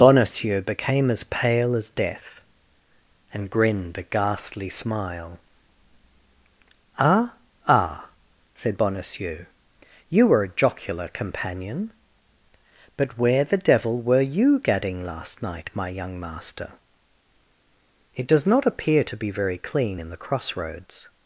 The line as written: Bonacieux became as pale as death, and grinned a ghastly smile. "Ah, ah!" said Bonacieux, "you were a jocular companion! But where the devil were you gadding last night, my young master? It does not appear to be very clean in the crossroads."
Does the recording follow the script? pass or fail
pass